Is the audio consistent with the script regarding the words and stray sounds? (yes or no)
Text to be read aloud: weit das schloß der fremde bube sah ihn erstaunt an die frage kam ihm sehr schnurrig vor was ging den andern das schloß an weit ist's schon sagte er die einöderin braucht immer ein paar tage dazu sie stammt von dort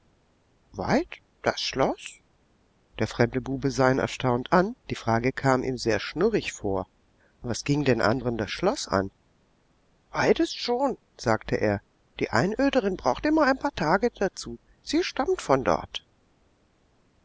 yes